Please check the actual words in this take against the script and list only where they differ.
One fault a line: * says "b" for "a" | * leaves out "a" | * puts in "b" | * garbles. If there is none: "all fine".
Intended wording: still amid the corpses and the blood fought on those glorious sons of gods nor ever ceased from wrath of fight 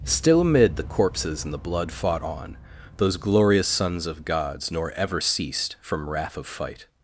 all fine